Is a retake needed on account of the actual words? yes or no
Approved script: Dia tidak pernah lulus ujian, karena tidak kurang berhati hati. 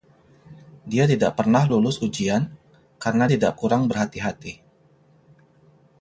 no